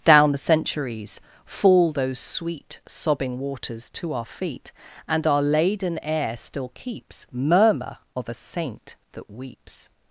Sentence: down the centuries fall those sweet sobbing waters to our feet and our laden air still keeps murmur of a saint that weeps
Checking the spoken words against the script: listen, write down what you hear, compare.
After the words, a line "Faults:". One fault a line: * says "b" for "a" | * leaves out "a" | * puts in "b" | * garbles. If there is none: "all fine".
down the centuries fall those sweet sobbing waters to our feet and our laden air still keeps murmur of a saint that weeps
Faults:
all fine